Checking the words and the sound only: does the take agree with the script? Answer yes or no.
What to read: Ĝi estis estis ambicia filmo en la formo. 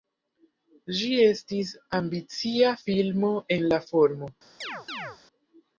no